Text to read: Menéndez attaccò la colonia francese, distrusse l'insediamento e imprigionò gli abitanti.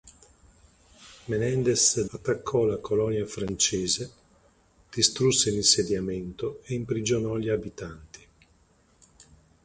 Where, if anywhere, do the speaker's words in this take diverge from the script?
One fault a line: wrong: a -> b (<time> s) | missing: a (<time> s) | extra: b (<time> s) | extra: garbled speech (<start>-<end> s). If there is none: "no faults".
no faults